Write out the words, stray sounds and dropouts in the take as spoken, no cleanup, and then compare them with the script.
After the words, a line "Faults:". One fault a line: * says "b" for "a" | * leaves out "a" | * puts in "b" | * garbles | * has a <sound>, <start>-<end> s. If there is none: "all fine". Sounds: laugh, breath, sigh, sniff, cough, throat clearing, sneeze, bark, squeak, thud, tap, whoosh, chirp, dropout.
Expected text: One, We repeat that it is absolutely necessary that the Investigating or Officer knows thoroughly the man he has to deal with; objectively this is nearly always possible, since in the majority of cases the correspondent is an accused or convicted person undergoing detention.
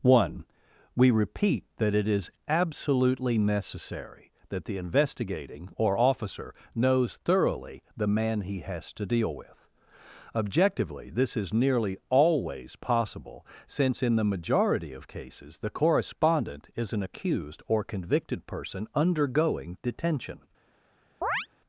One, We repeat that it is absolutely necessary that the Investigating or Officer knows thoroughly the man he has to deal with; objectively this is nearly always possible, since in the majority of cases the correspondent is an accused or convicted person undergoing detention.
Faults:
* has a chirp, 21.2-21.5 s